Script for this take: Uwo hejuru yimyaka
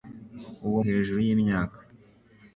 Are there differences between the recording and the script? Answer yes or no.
no